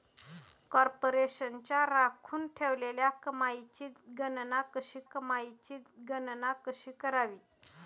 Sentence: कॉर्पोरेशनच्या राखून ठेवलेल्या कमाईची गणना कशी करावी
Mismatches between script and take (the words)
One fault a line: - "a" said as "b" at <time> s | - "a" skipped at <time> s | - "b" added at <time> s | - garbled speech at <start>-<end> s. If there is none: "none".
- "कमाईची गणना कशी" added at 5.1 s